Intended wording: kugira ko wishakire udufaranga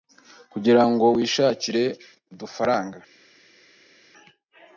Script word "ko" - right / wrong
wrong